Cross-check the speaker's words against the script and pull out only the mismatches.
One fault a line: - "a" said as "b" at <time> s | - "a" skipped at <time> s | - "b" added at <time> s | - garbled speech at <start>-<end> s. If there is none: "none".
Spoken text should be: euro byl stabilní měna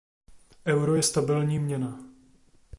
- "byl" said as "je" at 0.9 s